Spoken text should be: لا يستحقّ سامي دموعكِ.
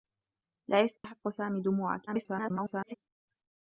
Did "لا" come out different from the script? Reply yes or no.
no